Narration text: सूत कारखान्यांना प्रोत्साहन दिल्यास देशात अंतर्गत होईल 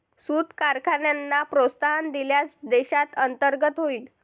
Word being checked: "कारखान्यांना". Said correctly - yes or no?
yes